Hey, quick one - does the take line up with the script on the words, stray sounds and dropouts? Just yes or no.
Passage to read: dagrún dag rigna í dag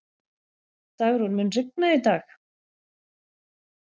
no